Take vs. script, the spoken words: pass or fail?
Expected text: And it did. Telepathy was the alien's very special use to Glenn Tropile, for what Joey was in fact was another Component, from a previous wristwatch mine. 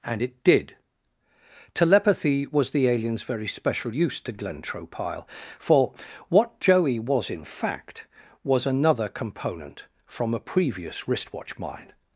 pass